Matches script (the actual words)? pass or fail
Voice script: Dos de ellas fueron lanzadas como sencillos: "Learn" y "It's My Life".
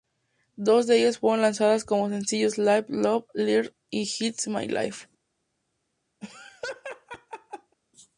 fail